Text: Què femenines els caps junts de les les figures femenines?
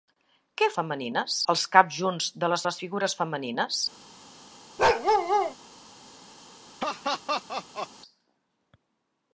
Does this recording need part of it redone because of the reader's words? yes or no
no